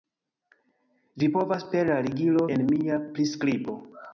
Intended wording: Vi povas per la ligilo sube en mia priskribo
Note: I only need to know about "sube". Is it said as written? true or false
false